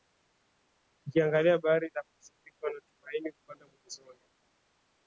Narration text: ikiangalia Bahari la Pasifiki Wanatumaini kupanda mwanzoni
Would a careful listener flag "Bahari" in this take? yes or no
no